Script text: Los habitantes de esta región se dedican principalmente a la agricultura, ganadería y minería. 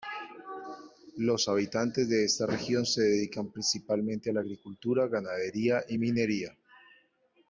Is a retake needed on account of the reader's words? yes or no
no